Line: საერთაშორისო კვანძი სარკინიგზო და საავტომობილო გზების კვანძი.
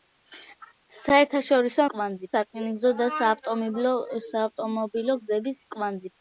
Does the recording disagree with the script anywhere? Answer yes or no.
no